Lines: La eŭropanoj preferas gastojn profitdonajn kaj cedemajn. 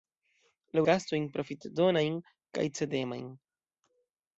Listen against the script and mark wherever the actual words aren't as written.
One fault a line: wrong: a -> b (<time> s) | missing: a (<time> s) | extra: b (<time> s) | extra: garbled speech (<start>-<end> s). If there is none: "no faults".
missing: eŭropanoj preferas (0.8 s)